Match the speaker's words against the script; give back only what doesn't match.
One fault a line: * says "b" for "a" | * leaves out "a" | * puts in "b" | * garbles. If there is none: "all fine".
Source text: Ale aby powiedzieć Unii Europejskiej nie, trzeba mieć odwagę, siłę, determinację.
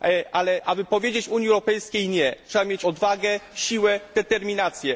all fine